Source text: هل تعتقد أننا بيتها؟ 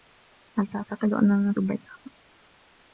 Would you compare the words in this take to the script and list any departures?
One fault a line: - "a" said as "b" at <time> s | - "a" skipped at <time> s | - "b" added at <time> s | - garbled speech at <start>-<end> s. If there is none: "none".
none